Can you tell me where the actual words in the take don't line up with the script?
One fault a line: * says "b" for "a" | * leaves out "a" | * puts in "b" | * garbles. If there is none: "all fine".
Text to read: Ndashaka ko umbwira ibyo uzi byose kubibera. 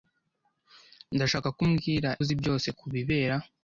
* leaves out "ibyo"